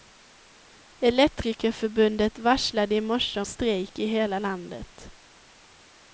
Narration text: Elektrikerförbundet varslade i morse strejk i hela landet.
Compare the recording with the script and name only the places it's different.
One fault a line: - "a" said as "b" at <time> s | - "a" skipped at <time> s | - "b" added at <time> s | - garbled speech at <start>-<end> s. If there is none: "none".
none